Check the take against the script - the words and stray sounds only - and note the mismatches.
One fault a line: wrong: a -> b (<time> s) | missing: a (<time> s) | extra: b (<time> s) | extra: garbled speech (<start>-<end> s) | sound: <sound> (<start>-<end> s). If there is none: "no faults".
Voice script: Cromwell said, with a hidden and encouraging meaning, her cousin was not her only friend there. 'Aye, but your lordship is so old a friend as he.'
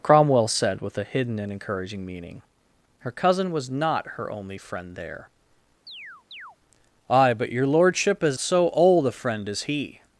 sound: chirp (5.9-6.6 s)